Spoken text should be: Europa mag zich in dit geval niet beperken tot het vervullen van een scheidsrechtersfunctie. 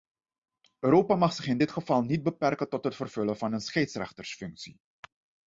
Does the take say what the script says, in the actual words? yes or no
yes